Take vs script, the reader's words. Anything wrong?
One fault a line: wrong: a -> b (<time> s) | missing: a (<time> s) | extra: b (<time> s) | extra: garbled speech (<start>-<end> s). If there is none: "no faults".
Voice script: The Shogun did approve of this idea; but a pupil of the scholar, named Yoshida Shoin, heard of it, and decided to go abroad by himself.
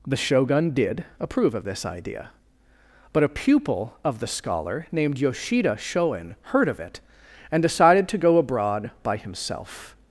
no faults